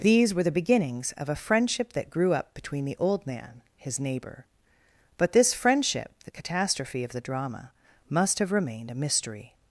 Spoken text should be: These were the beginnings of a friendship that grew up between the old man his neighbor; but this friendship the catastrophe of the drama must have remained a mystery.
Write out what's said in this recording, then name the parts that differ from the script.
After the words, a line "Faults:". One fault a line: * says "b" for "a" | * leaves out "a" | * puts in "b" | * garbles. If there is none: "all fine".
These were the beginnings of a friendship that grew up between the old man his neighbor; but this friendship the catastrophe of the drama must have remained a mystery.
Faults:
all fine